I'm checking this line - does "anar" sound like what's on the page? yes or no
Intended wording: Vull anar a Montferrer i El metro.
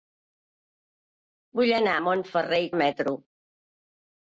yes